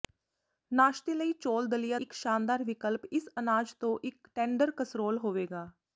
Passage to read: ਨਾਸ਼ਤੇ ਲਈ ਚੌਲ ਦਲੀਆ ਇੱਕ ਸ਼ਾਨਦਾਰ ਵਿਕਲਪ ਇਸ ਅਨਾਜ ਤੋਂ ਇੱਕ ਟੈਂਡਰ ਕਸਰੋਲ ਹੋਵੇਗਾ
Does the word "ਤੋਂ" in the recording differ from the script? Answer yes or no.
no